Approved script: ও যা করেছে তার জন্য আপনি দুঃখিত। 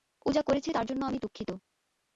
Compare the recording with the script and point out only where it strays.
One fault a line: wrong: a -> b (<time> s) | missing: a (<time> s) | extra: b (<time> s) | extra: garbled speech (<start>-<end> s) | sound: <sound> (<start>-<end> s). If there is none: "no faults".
wrong: আপনি -> আমি (1.1 s)